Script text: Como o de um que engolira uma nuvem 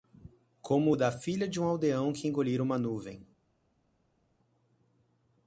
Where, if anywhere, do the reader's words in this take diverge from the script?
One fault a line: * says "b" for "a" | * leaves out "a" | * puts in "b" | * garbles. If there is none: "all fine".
* puts in "da filha"
* puts in "aldeão"